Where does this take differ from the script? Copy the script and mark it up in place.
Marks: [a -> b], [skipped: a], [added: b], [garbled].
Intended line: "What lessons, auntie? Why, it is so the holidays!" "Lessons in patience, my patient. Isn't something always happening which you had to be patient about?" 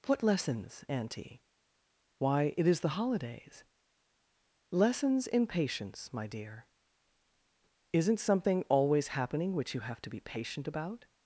"What lessons, auntie? Why, it is [skipped: so] the holidays!" "Lessons in patience, my [patient. -> dear] Isn't something always happening which you [had -> have] to be patient about?"